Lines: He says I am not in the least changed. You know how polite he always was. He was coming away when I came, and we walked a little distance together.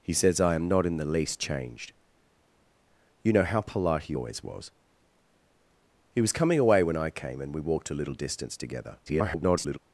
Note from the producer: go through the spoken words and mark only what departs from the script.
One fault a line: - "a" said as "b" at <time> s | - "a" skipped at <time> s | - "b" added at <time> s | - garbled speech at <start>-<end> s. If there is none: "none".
- garbled speech at 9.1-9.8 s